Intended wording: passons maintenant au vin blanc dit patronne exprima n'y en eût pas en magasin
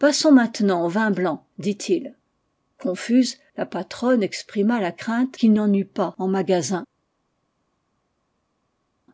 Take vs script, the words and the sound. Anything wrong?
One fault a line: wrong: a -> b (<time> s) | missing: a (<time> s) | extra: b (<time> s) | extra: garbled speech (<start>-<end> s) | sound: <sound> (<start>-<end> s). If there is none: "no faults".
extra: il confuse la (1.9 s)
extra: la crainte qu'il (4.8 s)